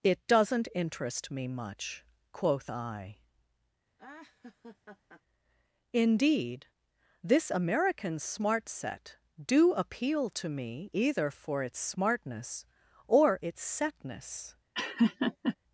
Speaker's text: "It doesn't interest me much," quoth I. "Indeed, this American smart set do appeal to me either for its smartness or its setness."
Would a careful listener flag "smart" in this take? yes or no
no